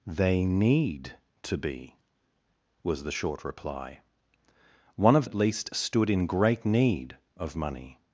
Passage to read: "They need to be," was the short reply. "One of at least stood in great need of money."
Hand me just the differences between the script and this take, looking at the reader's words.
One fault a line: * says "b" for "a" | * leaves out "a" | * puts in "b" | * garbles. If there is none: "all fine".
all fine